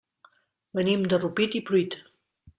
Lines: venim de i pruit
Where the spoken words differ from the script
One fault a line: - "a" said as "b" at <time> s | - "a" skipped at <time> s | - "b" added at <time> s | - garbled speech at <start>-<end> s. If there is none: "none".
- "rupit" added at 1.2 s